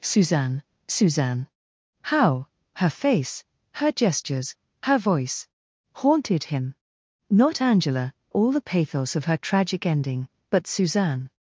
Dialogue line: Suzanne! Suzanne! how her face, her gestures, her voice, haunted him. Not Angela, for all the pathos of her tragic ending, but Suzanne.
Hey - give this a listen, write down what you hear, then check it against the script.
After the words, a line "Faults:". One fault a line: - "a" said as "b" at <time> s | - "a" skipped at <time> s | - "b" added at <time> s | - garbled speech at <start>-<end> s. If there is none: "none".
Suzanne! Suzanne! how her face, her gestures, her voice, haunted him. Not Angela, all the pathos of her tragic ending, but Suzanne.
Faults:
- "for" skipped at 8.1 s